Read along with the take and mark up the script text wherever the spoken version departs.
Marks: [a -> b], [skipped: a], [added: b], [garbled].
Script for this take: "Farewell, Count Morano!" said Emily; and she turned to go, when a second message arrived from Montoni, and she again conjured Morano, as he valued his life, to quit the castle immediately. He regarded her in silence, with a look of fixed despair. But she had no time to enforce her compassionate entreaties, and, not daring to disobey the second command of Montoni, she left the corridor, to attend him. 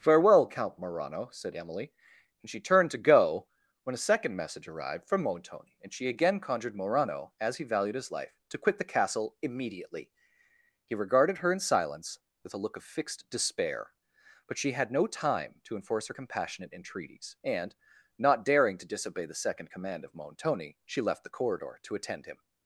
"Farewell, Count Morano!" said Emily; and she turned to go, when a second message arrived from Montoni, and she again conjured Morano, as he valued his life, to quit the castle immediately. He regarded her in silence, with a look of fixed despair. But she had no time to enforce her compassionate entreaties, and, not daring to disobey the second command of Montoni, she left the corridor, to attend him.